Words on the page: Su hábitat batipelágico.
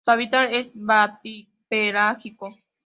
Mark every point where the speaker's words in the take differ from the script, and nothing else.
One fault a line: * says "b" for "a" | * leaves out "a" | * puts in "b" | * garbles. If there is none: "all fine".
* puts in "es"